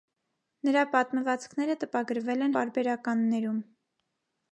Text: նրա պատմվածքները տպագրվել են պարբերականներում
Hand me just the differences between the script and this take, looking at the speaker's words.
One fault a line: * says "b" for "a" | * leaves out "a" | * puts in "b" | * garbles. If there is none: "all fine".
all fine